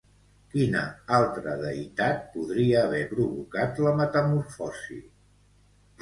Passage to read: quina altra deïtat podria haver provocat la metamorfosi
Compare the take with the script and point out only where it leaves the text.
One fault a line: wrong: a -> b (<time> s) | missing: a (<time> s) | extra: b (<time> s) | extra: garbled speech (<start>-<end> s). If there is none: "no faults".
no faults